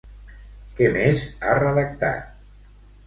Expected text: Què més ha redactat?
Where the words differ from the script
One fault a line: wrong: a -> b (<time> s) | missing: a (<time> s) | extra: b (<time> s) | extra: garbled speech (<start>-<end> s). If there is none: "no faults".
no faults